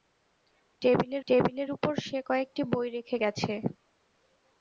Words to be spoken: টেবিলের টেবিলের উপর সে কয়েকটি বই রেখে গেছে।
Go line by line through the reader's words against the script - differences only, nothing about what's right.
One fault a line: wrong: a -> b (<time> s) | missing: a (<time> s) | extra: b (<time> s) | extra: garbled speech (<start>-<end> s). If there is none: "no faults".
no faults